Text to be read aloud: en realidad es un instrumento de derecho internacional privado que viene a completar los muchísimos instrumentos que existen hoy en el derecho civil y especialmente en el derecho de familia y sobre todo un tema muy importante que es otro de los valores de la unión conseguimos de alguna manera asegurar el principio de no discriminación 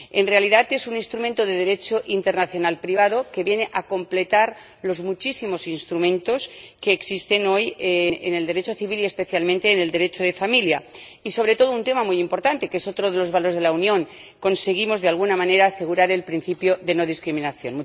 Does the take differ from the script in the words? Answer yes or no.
no